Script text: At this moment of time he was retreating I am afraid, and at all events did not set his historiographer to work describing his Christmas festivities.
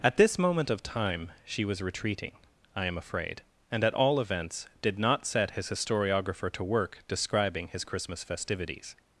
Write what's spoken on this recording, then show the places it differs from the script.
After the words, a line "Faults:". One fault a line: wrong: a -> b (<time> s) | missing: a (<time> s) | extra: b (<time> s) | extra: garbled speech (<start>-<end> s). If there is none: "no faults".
At this moment of time she was retreating I am afraid, and at all events did not set his historiographer to work describing his Christmas festivities.
Faults:
wrong: he -> she (1.4 s)